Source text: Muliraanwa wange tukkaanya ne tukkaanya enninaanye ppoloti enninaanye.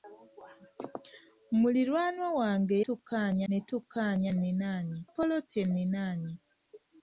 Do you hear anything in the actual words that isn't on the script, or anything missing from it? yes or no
no